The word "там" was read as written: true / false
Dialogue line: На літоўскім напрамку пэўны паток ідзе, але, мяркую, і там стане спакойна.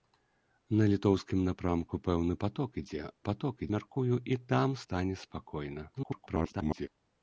true